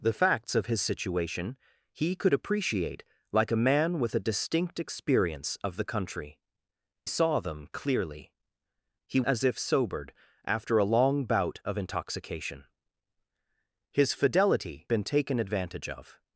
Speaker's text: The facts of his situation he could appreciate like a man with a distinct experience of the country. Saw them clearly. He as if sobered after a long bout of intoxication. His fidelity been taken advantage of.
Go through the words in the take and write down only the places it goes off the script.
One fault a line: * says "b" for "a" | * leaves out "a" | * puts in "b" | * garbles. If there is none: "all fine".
all fine